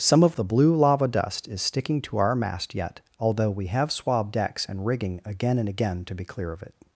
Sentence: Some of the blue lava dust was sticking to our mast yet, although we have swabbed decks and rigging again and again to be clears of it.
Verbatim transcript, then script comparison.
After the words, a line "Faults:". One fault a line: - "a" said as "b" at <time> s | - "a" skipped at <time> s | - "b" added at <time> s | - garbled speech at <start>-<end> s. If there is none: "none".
Some of the blue lava dust is sticking to our mast yet, although we have swabbed decks and rigging again and again to be clear of it.
Faults:
- "was" said as "is" at 1.5 s
- "clears" said as "clear" at 6.2 s